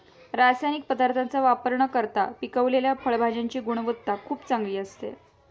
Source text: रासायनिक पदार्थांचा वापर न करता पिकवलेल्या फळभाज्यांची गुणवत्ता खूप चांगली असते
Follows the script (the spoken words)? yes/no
yes